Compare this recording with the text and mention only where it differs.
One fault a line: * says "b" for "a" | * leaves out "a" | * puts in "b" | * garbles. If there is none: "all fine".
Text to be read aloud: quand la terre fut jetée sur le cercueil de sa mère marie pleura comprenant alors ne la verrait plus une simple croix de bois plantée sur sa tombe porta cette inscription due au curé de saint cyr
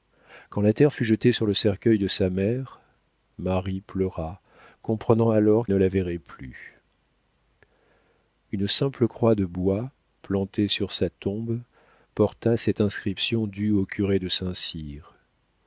all fine